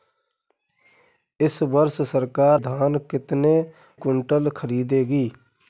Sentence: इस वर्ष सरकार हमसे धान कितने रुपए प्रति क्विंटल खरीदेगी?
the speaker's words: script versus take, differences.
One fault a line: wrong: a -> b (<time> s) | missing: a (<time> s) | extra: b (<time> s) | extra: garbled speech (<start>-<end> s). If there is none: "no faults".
missing: हमसे (2.6 s)
missing: रुपए प्रति (3.6 s)